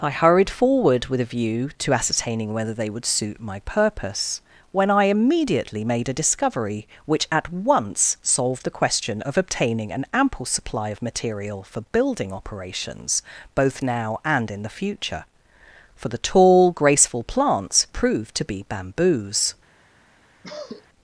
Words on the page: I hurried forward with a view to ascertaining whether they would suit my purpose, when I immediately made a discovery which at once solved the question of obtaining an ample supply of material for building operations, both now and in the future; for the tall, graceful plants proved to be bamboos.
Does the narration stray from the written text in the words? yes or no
no